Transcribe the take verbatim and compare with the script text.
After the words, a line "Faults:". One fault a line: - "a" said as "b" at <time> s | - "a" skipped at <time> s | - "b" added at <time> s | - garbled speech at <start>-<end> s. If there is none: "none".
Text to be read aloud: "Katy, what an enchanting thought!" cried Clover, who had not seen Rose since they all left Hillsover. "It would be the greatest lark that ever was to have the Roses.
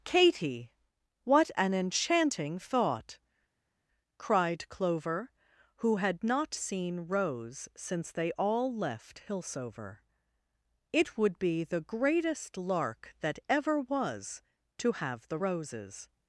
"Katy, what an enchanting thought!" cried Clover, who had not seen Rose since they all left Hillsover. "It would be the greatest lark that ever was to have the Roses.
Faults:
none